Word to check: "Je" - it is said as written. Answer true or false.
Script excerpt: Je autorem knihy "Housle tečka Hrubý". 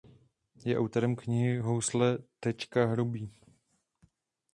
true